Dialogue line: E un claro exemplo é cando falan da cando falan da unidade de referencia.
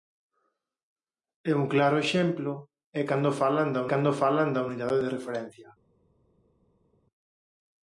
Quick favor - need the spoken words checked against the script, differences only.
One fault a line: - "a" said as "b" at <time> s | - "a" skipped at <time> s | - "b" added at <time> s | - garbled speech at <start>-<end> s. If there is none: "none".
none